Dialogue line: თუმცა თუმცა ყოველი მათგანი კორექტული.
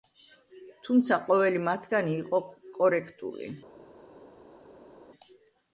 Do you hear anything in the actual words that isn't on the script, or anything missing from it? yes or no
yes